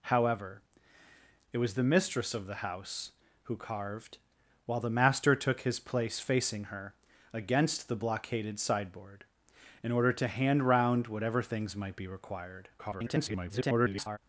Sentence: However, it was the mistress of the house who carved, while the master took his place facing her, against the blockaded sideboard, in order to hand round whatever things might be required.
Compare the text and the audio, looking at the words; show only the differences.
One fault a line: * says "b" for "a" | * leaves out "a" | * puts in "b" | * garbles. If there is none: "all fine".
* garbles